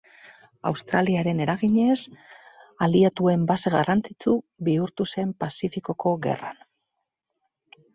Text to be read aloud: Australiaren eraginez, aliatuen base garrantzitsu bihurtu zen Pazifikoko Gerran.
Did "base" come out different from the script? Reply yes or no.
no